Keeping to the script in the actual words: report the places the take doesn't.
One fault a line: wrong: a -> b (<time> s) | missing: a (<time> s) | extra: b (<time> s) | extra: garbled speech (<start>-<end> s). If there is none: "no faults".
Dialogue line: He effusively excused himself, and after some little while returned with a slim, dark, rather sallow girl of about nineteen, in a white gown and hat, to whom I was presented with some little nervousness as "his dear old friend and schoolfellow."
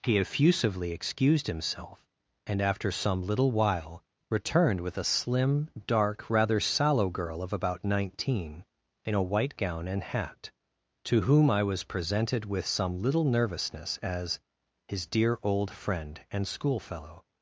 no faults